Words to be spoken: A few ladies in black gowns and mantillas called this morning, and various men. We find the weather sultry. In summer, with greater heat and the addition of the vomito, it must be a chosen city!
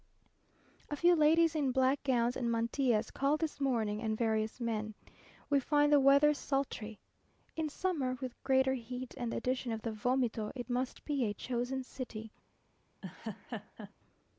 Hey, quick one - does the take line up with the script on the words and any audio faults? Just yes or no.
no